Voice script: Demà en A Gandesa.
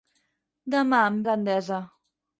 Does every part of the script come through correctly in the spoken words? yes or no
yes